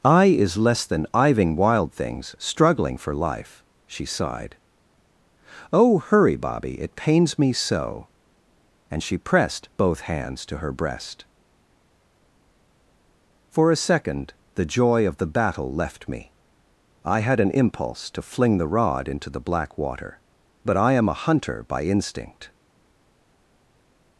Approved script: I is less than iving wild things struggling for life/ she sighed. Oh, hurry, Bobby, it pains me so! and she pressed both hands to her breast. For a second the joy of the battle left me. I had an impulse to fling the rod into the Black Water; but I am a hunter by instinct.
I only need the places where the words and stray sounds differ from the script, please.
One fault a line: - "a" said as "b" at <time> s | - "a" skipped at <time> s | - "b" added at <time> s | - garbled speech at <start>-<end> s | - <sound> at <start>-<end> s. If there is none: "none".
none